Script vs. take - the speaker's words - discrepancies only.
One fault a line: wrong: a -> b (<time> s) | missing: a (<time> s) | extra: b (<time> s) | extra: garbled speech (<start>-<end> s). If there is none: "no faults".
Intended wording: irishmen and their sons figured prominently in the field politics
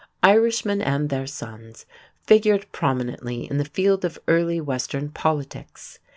extra: of early western (4.0 s)